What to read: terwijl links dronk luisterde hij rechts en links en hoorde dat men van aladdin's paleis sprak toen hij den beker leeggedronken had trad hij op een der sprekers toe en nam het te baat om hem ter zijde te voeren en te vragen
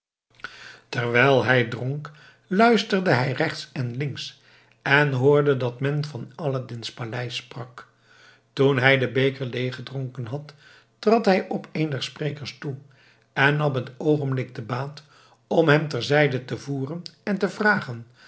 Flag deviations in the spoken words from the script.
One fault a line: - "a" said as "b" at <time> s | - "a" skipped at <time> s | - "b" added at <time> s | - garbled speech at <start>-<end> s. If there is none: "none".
- "links" said as "hij" at 1.4 s
- "oogenblik" added at 14.0 s